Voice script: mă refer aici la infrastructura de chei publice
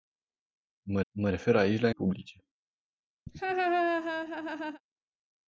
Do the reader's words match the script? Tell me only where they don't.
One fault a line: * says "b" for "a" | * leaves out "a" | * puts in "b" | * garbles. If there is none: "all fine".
* puts in "mă"
* leaves out "infrastructura de chei"